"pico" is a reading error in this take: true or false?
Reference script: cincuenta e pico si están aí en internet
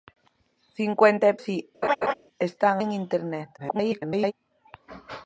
true